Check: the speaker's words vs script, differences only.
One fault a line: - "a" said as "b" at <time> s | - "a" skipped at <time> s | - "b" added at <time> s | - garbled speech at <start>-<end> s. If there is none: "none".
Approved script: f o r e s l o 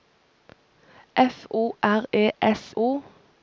- "l" skipped at 2.7 s